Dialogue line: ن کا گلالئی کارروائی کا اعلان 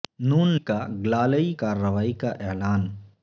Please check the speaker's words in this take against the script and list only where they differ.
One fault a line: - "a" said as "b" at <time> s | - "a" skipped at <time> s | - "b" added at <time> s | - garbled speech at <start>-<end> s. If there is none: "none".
none